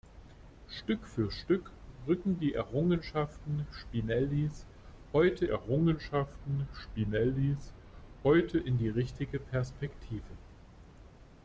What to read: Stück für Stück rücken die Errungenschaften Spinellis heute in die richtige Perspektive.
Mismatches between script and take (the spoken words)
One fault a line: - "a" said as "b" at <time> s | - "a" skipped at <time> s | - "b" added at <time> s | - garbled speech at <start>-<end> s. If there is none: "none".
- "Errungenschaften Spinellis heute" added at 5.5 s